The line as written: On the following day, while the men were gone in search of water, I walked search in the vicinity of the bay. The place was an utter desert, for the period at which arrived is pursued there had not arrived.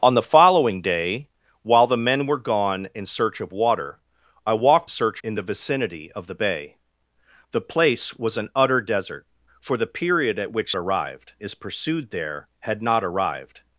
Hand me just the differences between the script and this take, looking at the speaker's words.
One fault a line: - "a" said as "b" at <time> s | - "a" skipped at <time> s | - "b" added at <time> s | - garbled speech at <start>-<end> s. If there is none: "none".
none